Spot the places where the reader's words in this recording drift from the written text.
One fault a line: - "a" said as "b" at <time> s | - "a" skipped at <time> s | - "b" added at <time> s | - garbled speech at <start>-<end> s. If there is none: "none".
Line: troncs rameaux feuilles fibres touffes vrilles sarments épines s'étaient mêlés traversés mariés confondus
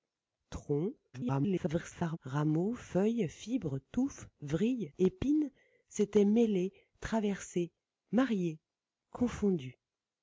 - garbled speech at 1.1-2.2 s
- "sarments" skipped at 4.9 s